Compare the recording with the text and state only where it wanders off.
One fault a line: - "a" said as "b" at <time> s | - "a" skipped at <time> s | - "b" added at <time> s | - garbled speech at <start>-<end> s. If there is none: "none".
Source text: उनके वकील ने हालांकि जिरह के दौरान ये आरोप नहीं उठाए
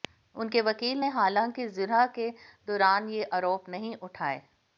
none